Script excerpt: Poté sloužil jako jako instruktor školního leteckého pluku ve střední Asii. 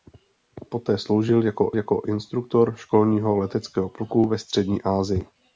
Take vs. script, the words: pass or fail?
pass